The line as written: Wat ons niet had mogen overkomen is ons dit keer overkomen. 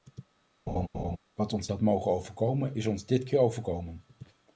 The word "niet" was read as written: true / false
false